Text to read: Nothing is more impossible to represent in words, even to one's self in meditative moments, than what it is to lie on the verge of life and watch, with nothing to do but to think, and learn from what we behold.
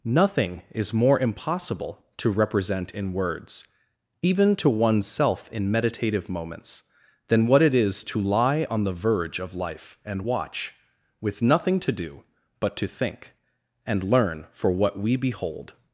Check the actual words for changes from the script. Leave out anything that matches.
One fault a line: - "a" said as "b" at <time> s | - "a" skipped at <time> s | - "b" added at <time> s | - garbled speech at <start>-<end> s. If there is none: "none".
- "from" said as "for" at 14.5 s